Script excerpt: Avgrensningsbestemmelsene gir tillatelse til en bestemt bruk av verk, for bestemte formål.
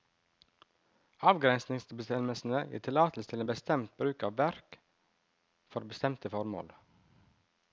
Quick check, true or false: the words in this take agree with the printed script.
true